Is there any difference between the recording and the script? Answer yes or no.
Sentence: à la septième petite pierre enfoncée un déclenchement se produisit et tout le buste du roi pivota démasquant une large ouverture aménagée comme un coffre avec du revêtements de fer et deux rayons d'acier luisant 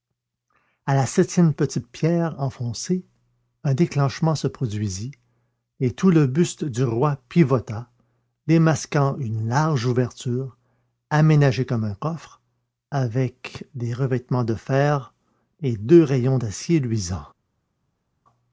yes